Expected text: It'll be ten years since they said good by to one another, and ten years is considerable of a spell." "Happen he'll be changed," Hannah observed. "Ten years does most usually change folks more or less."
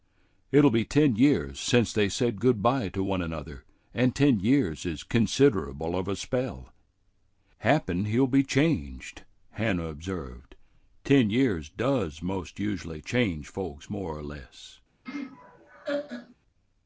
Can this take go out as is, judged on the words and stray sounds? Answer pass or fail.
fail